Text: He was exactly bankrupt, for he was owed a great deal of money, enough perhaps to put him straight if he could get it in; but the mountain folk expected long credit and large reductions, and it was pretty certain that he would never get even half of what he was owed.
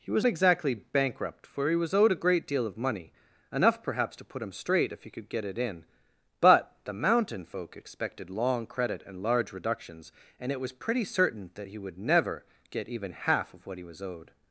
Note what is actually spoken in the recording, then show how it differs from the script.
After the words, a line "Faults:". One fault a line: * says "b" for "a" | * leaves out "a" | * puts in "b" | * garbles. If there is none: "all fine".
He was exactly bankrupt, for he was owed a great deal of money, enough perhaps to put him straight if he could get it in; but the mountain folk expected long credit and large reductions, and it was pretty certain that he would never get even half of what he was owed.
Faults:
all fine